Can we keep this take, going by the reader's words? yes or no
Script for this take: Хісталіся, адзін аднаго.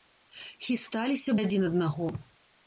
yes